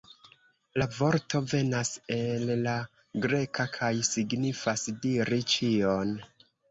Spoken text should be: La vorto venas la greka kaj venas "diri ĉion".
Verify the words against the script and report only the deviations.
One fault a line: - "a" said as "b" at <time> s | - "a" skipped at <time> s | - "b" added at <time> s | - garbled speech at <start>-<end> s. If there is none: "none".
- "el" added at 2.1 s
- "venas" said as "signifas" at 4.1 s